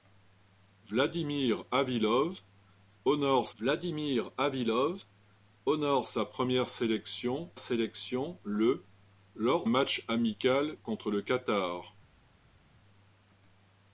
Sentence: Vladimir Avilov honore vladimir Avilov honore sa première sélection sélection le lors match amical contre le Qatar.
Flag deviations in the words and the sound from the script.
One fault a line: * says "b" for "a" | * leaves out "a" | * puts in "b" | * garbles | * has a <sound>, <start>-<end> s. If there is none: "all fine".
all fine